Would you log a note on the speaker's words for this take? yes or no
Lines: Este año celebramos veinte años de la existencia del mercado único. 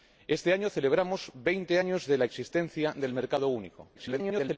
yes